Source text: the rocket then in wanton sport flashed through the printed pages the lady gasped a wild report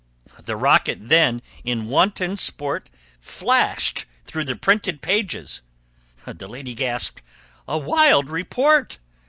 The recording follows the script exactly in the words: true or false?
true